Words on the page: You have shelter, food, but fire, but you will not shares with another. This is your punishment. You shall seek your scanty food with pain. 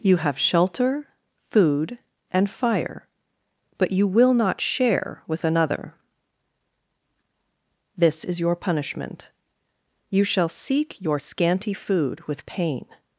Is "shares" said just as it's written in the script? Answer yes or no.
no